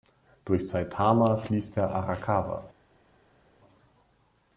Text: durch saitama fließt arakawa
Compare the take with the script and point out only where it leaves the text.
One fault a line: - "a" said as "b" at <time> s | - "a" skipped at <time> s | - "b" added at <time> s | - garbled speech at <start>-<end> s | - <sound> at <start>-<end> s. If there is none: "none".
- "der" added at 1.8 s